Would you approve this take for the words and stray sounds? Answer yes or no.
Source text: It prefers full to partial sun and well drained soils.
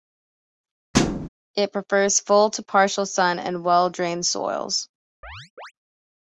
no